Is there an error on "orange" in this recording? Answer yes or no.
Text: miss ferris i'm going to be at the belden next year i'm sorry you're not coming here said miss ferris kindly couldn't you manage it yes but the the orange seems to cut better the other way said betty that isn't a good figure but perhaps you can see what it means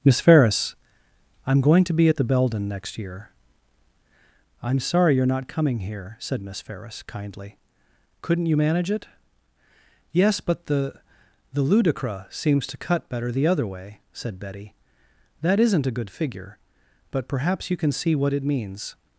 yes